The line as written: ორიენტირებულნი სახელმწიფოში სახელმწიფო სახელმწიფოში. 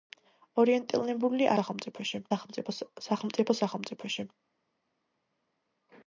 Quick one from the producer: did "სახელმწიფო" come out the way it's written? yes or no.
yes